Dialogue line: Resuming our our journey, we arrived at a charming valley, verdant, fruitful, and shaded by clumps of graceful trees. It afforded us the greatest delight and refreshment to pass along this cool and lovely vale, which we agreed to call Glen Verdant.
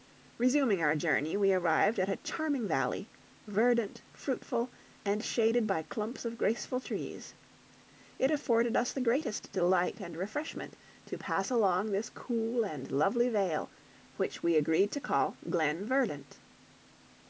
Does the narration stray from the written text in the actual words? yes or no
yes